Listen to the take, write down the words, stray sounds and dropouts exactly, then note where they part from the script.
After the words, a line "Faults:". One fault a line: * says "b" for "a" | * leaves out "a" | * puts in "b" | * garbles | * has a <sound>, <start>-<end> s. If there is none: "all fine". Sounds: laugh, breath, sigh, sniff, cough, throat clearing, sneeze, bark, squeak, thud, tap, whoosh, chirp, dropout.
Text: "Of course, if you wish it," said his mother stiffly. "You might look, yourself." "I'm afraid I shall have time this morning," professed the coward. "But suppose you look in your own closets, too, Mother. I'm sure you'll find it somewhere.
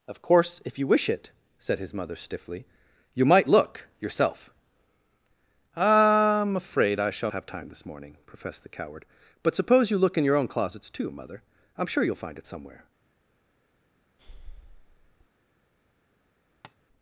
"Of course, if you wish it," said his mother stiffly. "You might look, yourself." "I'm afraid I shall have time this morning," professed the coward. "But suppose you look in your own closets, too, Mother. I'm sure you'll find it somewhere.
Faults:
* has a breath, 14.2-15.3 s
* has a tap, 16.6-16.8 s